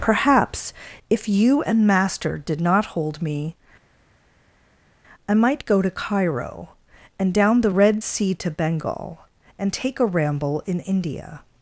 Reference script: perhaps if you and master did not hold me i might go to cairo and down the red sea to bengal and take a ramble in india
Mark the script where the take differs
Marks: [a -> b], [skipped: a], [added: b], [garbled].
perhaps if you and master did not hold me i might go to cairo and down the red sea to bengal and take a ramble in india